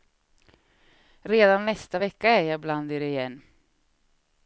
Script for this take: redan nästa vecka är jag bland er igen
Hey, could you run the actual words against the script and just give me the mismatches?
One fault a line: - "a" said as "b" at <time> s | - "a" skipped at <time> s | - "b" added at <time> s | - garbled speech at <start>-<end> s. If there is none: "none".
none